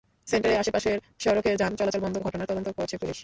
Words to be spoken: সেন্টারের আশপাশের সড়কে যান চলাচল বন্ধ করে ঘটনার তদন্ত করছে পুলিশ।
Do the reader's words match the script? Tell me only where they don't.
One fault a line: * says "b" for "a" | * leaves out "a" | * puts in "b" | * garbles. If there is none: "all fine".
* leaves out "করে"